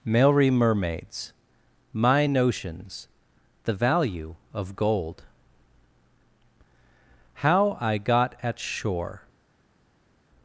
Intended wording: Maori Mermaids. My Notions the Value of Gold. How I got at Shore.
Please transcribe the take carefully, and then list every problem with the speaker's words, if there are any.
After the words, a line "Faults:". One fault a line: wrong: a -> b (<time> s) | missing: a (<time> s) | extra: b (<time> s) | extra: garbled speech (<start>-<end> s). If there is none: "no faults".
Maori Mermaids. My Notions the Value of Gold. How I got at Shore.
Faults:
no faults